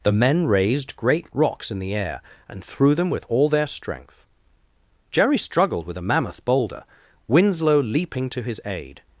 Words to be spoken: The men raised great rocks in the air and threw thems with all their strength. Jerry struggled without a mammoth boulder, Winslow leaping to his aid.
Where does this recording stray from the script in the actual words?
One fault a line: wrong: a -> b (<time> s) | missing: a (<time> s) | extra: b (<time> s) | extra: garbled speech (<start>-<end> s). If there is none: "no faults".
wrong: thems -> them (3.0 s)
wrong: without -> with (5.8 s)